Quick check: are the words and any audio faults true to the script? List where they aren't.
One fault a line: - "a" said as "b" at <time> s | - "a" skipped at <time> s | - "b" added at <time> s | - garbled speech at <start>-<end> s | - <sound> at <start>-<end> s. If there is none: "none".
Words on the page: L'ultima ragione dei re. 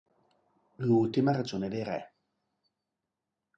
none